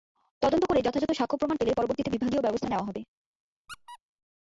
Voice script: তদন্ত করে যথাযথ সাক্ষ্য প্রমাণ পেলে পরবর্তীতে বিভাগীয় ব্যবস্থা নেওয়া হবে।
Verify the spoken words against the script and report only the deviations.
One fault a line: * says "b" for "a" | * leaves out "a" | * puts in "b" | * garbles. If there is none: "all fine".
all fine